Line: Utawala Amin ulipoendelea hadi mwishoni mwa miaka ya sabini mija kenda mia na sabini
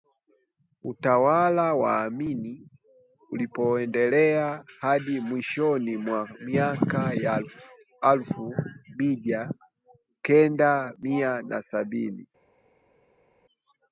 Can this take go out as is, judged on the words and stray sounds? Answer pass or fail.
fail